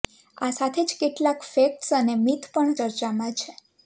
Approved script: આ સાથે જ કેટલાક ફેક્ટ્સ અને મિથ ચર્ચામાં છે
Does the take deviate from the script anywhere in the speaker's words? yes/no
yes